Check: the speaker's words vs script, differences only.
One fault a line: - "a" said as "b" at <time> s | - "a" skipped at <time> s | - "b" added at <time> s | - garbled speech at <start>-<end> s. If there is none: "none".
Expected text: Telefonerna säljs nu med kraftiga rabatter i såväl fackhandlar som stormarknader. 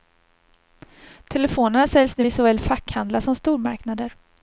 - "med kraftiga rabatter" skipped at 2.2 s